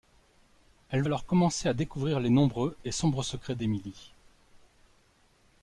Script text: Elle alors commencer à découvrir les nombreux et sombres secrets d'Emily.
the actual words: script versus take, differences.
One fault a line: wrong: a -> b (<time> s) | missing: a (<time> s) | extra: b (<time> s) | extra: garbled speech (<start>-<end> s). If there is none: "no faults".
no faults